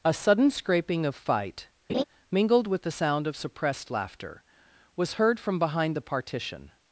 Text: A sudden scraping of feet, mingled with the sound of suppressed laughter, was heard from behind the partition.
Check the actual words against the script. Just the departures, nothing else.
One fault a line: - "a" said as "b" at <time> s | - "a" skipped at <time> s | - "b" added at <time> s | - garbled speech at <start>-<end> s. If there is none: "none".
- "feet" said as "fight" at 1.1 s